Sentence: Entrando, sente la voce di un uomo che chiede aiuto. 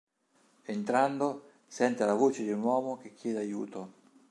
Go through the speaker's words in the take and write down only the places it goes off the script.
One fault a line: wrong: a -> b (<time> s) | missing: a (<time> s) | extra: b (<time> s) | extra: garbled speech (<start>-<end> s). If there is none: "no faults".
no faults